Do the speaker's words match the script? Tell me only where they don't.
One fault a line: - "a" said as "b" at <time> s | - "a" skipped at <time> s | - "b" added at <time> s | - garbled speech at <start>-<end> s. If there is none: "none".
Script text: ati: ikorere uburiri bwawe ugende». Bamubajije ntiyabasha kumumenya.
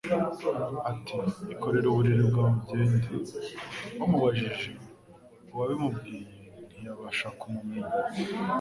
- "uwabimubwiye" added at 5.5 s